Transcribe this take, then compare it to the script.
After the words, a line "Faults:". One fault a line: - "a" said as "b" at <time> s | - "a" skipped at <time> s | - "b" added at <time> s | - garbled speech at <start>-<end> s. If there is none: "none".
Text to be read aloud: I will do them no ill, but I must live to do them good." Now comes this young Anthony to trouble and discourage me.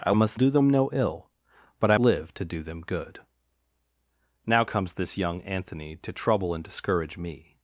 I must do them no ill, but I live to do them good." Now comes this young Anthony to trouble and discourage me.
Faults:
- "will" said as "must" at 0.1 s
- "must" skipped at 2.0 s